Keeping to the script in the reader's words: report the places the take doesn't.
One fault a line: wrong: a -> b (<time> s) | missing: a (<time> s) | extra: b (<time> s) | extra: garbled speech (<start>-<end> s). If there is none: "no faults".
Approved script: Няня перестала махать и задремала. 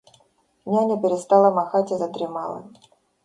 no faults